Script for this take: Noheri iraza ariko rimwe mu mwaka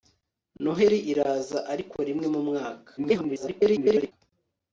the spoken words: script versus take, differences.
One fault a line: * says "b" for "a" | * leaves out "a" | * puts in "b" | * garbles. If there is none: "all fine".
* garbles